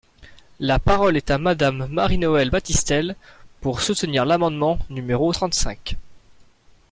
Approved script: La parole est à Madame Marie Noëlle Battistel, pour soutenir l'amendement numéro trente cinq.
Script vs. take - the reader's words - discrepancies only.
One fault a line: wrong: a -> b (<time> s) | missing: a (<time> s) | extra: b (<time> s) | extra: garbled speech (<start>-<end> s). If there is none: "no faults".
no faults